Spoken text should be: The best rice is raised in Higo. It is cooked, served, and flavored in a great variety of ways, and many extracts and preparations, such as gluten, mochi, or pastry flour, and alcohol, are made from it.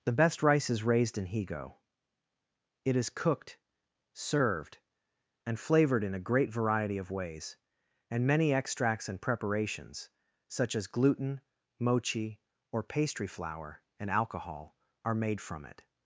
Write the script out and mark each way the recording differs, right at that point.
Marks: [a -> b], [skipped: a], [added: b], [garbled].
The best rice is raised in Higo. It is cooked, served, and flavored in a great variety of ways, and many extracts and preparations, such as gluten, mochi, or pastry flour, and alcohol, are made from it.